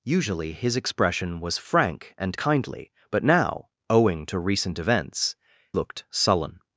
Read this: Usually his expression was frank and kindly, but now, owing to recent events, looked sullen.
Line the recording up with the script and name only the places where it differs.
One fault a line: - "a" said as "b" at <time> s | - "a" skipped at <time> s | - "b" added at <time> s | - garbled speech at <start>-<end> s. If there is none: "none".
none